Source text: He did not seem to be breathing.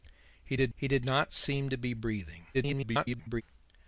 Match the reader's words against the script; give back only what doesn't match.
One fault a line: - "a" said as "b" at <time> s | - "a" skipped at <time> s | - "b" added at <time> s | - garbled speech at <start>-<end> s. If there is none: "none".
- "he did" added at 0.7 s
- garbled speech at 2.5-3.4 s